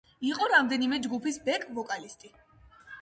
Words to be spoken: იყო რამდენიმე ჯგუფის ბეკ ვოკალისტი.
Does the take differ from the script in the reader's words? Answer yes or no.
no